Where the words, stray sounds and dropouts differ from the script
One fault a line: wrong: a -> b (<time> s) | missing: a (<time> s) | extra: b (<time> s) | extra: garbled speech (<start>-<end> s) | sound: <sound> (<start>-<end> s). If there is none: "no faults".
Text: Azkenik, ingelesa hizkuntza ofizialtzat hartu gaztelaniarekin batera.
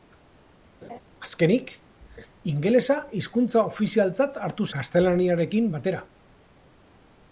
sound: laugh (0.8-1.0 s)